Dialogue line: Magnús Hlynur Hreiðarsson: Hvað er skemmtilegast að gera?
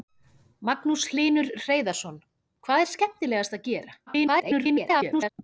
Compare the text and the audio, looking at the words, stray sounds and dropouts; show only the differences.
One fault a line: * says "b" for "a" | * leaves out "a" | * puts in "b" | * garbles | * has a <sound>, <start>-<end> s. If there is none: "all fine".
* garbles